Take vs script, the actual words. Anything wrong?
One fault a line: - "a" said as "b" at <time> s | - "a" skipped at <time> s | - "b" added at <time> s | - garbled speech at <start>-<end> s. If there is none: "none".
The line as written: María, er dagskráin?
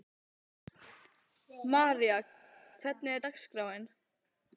- "hvernig" added at 2.8 s